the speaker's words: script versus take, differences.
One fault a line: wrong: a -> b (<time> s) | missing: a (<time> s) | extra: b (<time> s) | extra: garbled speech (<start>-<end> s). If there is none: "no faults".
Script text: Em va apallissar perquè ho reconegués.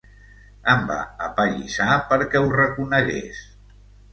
no faults